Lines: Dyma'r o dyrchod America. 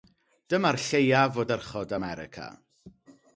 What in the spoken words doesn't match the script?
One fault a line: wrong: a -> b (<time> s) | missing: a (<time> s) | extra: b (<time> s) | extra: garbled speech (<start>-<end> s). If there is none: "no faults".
extra: lleiaf (0.8 s)